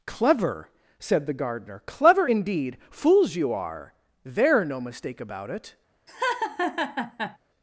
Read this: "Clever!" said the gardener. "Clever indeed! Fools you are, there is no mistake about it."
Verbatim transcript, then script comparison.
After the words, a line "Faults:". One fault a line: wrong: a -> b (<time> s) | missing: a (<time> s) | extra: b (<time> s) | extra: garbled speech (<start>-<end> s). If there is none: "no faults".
"Clever!" said the gardener. "Clever indeed! Fools you are, there no mistake about it."
Faults:
missing: is (4.6 s)